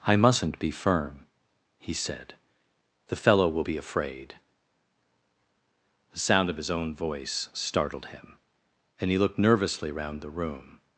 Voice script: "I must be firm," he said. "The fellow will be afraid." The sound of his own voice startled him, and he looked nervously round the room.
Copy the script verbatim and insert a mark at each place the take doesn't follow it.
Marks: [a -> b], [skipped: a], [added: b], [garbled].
"I [must -> mustn't] be firm," he said. "The fellow will be afraid." The sound of his own voice startled him, and he looked nervously round the room.